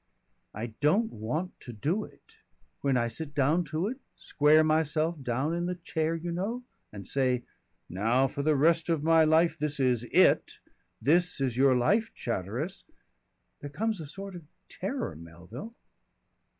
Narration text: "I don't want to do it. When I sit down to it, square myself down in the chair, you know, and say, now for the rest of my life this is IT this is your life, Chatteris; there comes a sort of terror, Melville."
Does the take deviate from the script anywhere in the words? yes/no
no